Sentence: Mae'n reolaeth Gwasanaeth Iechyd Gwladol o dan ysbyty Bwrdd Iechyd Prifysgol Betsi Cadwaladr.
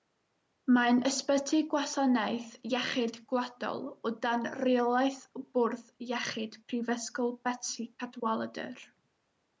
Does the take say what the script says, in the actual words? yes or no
no